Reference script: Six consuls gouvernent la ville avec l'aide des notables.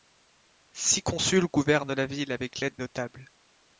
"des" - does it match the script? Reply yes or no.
no